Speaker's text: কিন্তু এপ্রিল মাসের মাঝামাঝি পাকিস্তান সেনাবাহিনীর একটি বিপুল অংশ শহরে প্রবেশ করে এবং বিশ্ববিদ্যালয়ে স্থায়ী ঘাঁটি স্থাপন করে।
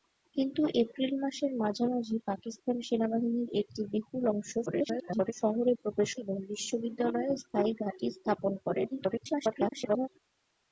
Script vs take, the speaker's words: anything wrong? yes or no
yes